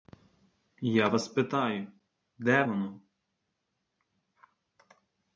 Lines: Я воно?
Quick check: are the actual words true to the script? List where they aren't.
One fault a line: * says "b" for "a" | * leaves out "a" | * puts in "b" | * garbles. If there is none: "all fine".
* puts in "вас питаю де"